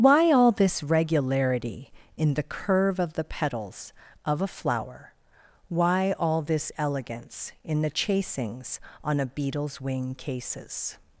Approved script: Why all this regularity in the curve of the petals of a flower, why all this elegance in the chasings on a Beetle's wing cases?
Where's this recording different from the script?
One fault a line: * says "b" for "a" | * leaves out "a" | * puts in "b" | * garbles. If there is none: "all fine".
all fine